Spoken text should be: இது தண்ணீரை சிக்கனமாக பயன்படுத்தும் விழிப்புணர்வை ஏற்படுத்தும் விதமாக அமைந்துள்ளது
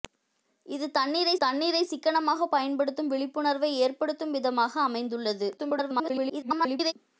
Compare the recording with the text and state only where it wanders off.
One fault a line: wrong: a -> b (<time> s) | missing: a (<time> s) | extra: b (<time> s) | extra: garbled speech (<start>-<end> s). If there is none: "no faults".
extra: தண்ணீரை (1.4 s)
extra: garbled speech (5.6-6.9 s)